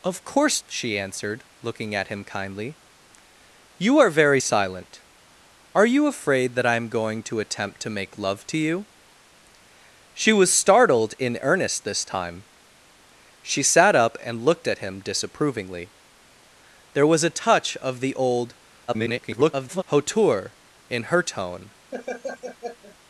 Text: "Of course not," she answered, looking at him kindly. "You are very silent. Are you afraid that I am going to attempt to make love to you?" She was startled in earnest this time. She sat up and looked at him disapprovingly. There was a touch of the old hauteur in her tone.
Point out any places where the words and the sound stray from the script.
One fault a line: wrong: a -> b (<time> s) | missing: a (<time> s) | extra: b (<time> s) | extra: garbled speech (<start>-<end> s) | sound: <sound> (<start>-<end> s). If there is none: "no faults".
missing: not (0.6 s)
extra: garbled speech (18.9-19.8 s)
sound: laugh (21.9-23.0 s)